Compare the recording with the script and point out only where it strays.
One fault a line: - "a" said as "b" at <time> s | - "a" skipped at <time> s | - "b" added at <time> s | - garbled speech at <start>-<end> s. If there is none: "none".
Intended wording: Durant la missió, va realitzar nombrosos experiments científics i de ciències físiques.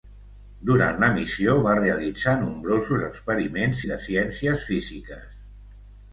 - "científics" skipped at 3.8 s